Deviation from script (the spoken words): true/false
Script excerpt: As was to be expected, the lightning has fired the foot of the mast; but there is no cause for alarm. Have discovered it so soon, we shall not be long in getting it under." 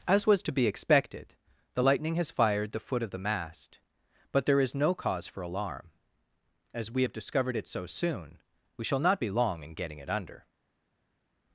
true